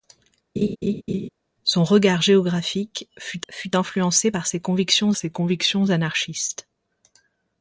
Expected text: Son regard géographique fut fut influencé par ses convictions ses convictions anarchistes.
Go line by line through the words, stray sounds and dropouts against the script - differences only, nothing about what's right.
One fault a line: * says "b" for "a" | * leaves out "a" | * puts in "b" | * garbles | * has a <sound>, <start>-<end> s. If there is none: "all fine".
* has a laugh, 0.6-1.3 s